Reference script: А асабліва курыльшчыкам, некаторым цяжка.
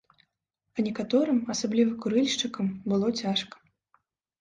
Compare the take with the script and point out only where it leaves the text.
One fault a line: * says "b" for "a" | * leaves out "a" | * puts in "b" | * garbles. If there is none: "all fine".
* puts in "некаторым"
* says "было" for "некаторым"